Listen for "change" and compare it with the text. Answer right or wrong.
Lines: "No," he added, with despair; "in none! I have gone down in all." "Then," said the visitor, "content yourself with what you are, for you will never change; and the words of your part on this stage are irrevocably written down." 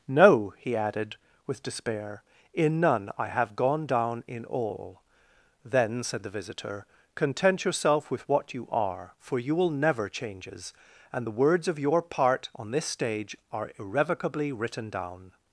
wrong